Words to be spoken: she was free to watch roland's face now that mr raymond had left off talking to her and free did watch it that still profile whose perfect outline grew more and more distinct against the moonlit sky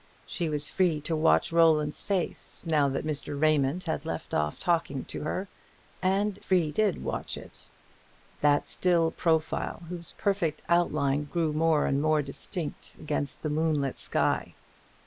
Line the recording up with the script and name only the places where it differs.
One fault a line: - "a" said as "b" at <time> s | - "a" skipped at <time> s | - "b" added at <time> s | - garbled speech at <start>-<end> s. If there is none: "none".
none